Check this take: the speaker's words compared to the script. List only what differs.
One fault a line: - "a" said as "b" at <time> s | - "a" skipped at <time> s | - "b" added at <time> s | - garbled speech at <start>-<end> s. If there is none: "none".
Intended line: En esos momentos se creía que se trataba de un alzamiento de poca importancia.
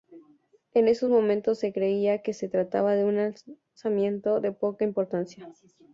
none